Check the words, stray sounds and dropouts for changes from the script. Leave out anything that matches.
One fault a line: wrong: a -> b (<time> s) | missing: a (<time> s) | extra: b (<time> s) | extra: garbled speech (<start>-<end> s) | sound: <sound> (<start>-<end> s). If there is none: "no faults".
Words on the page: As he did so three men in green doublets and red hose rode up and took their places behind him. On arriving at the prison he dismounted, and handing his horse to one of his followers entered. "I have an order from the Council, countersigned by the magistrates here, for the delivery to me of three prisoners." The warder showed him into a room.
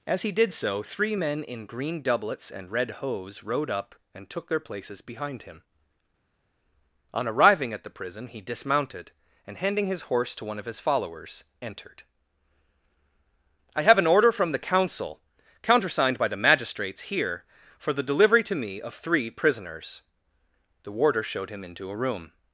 no faults